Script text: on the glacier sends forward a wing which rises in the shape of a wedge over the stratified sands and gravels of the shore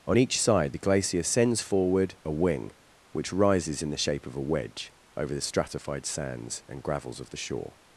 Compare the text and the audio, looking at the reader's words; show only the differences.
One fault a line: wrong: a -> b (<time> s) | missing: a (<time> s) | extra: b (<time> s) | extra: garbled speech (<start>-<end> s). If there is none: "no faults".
extra: each side (0.2 s)